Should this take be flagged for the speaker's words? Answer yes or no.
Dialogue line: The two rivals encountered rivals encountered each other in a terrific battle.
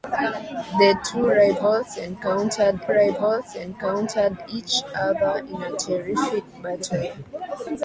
no